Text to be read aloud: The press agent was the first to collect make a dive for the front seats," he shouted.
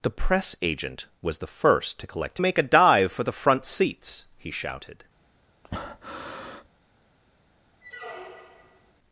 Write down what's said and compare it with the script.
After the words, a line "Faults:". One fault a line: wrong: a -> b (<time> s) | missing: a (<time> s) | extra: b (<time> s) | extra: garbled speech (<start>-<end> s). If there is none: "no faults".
The press agent was the first to collect make a dive for the front seats," he shouted.
Faults:
no faults